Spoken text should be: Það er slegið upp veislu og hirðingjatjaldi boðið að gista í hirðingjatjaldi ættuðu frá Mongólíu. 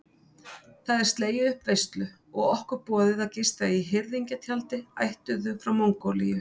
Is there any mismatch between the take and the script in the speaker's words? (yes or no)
yes